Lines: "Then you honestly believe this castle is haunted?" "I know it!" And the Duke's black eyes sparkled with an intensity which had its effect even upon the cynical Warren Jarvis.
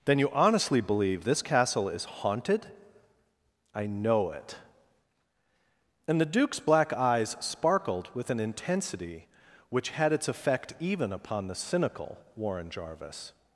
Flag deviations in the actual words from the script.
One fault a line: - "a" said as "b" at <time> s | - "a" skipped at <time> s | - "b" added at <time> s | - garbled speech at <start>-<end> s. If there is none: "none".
none